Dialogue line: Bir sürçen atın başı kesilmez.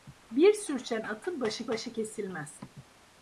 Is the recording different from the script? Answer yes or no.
yes